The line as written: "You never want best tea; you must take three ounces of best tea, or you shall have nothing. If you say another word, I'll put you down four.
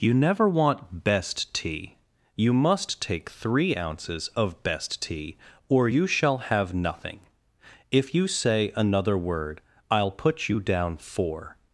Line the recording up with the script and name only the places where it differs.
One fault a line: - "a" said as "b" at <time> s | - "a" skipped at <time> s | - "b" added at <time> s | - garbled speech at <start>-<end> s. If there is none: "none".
none